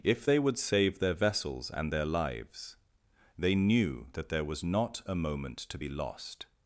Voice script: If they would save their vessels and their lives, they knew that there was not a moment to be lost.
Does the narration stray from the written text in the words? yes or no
no